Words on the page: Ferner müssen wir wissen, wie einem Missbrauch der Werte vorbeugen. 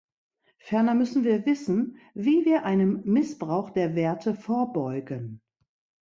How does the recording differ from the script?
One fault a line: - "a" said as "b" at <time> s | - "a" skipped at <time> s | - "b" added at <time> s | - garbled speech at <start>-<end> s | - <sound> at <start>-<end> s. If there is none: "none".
- "wir" added at 2.4 s